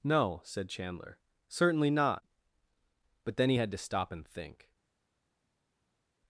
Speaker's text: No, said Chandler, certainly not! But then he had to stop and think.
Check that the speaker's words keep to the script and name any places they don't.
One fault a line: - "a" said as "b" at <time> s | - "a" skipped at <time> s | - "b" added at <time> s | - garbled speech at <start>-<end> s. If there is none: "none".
none